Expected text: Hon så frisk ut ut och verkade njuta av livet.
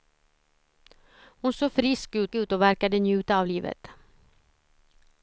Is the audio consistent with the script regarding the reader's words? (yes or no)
yes